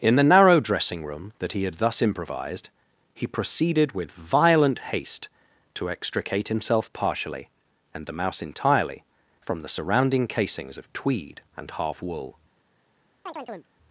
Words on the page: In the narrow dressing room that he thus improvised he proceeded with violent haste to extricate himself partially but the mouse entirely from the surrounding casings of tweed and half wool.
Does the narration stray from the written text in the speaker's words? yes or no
yes